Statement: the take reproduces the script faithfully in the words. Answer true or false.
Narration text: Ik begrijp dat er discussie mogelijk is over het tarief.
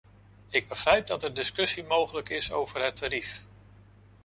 true